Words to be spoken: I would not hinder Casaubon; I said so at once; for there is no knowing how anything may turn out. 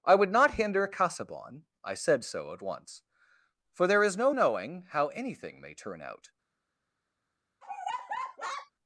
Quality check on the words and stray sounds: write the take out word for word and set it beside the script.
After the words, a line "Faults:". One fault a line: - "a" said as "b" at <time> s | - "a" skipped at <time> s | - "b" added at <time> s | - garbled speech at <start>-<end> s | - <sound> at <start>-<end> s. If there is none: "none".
I would not hinder Casaubon; I said so at once; for there is no knowing how anything may turn out.
Faults:
- laugh at 7.6-8.7 s